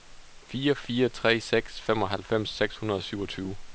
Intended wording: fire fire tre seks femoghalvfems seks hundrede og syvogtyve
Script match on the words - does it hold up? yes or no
yes